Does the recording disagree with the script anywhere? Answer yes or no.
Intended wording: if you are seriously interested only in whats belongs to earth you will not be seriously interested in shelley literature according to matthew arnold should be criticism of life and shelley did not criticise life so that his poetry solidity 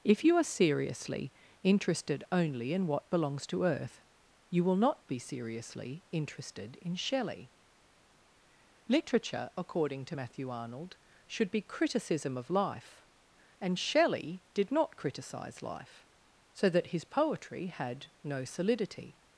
yes